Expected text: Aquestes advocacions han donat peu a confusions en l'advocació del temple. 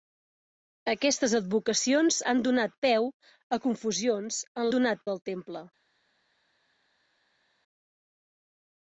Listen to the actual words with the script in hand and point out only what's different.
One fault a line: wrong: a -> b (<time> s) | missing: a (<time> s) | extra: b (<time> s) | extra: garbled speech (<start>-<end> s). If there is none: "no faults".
wrong: l'advocació -> donat (4.7 s)